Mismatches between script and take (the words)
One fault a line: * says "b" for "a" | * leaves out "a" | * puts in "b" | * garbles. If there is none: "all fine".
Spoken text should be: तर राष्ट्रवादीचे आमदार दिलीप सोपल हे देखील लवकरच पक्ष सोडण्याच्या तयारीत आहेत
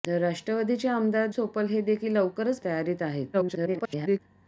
* leaves out "दिलीप"
* leaves out "पक्ष सोडण्याच्या"
* garbles